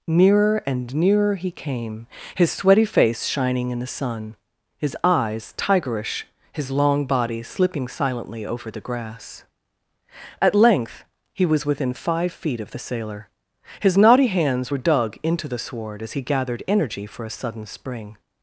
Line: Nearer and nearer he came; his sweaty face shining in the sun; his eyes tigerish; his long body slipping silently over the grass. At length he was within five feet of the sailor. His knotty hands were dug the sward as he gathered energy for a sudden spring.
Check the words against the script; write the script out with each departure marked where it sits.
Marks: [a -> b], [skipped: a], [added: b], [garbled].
Nearer and nearer he came; his sweaty face shining in the sun; his eyes tigerish; his long body slipping silently over the grass. At length he was within five feet of the sailor. His knotty hands were dug [added: into] the sward as he gathered energy for a sudden spring.